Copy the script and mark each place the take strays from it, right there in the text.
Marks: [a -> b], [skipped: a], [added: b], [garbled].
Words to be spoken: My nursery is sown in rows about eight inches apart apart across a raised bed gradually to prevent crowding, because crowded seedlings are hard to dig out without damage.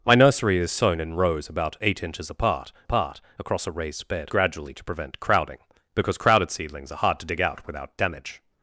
My nursery is sown in rows about eight inches apart apart across a raised bed gradually to prevent crowding, because crowded seedlings are hard to dig out without damage.